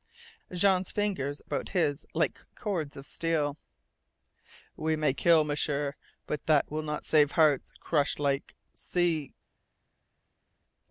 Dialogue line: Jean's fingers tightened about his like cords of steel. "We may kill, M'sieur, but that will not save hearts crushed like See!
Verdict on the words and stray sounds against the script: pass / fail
fail